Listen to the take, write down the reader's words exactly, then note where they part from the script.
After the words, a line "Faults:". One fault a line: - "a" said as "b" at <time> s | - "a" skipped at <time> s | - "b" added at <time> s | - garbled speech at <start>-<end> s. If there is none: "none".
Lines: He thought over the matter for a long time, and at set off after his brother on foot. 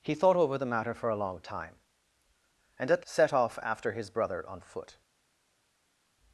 He thought over the matter for a long time, and at set off after his brother on foot.
Faults:
none